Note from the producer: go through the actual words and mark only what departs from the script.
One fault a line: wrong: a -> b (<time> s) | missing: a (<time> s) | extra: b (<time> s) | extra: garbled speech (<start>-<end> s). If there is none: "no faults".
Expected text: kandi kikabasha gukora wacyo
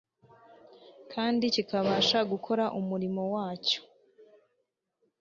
extra: umurimo (2.8 s)